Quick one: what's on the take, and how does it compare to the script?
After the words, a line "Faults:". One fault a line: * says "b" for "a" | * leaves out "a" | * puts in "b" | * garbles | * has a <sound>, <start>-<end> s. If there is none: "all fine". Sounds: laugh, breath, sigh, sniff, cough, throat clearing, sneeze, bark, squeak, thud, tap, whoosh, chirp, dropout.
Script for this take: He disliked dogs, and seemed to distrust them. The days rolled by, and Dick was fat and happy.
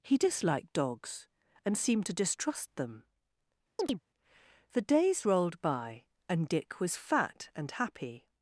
He disliked dogs, and seemed to distrust them. The days rolled by, and Dick was fat and happy.
Faults:
* has a chirp, 3.8-4.0 s